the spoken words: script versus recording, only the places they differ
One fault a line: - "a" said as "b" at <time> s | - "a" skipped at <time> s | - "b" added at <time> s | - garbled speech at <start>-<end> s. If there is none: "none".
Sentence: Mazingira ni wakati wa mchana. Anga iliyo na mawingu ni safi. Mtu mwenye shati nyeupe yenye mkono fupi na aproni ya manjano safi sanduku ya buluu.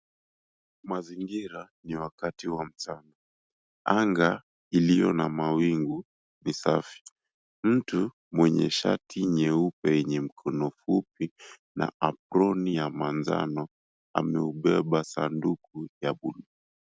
- "safi" said as "ameubeba" at 14.1 s